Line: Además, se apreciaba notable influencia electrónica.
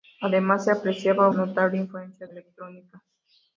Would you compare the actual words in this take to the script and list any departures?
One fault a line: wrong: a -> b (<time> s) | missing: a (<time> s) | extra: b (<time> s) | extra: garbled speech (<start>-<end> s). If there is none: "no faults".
no faults